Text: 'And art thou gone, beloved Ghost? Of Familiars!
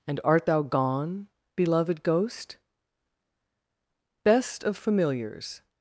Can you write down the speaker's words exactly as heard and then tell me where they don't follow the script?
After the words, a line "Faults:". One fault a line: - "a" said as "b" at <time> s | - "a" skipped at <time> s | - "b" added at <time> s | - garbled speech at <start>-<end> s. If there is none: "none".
'And art thou gone, beloved Ghost? Best of Familiars!
Faults:
- "Best" added at 4.2 s